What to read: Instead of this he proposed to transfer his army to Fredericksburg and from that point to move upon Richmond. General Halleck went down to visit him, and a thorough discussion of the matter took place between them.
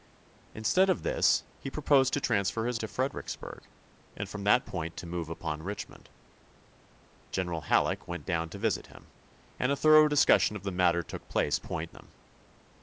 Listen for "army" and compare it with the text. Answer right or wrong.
wrong